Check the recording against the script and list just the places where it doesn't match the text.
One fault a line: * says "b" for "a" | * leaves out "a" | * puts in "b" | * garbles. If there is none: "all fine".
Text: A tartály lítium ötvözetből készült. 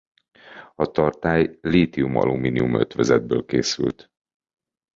* puts in "alumínium"